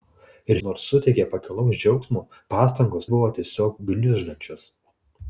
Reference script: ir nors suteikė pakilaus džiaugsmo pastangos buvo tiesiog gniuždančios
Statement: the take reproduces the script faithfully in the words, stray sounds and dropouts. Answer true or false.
true